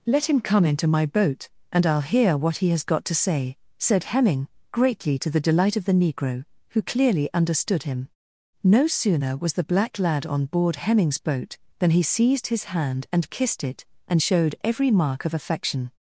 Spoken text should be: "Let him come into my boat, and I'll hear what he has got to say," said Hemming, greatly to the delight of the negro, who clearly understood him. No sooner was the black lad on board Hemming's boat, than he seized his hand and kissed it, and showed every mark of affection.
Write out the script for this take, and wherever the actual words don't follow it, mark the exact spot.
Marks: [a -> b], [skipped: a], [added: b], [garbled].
"Let him come into my boat, and I'll hear what he has got to say," said Hemming, greatly to the delight of the negro, who clearly understood him. No sooner was the black lad on board Hemming's boat, than he seized his hand and kissed it, and showed every mark of affection.